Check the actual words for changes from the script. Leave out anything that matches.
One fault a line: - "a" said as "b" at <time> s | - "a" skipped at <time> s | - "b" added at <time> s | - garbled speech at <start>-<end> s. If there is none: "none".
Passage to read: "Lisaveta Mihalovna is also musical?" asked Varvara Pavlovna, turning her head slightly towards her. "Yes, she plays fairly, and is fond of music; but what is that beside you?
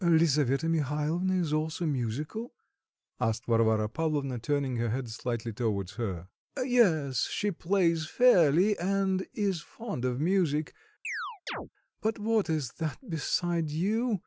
none